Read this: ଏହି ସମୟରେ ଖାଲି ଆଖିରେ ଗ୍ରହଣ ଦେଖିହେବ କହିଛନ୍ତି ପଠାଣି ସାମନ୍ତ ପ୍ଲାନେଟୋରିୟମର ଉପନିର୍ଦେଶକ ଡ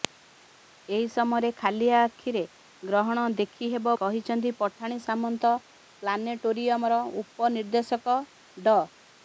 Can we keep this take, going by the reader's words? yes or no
yes